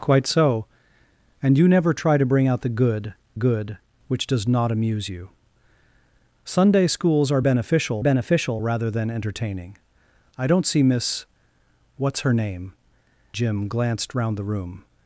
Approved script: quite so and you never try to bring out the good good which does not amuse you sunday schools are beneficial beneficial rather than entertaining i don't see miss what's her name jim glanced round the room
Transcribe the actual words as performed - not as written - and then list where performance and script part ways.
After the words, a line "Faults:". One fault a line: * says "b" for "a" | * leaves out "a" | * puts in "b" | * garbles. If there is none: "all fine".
quite so and you never try to bring out the good good which does not amuse you sunday schools are beneficial beneficial rather than entertaining i don't see miss what's her name jim glanced round the room
Faults:
all fine